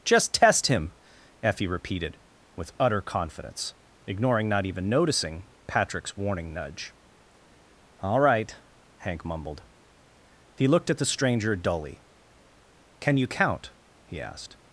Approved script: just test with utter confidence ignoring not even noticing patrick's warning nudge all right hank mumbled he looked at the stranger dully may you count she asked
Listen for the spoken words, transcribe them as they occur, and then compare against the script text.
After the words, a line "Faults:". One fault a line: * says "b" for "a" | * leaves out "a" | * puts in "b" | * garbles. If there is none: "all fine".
just test him effie repeated with utter confidence ignoring not even noticing patrick's warning nudge all right hank mumbled he looked at the stranger dully can you count he asked
Faults:
* puts in "him effie repeated"
* says "can" for "may"
* says "he" for "she"